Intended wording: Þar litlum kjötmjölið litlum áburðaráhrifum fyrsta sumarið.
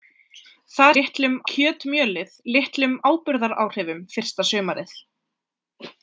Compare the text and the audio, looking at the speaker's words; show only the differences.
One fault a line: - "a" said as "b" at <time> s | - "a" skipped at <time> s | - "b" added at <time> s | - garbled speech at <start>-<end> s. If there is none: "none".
none